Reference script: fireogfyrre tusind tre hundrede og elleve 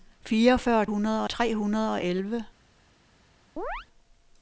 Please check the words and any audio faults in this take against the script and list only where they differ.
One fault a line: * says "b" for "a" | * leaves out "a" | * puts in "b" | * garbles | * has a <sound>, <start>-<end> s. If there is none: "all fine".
* says "hundrede" for "tusind"
* has a chirp, 3.6-3.9 s